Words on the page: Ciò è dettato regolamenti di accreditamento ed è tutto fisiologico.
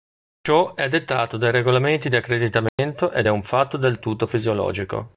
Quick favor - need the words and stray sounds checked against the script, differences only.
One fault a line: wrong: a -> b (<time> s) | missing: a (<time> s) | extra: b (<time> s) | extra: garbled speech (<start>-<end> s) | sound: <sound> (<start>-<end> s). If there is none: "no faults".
extra: dai (1.4 s)
sound: dropout (2.7-2.8 s)
extra: un fatto del (3.3 s)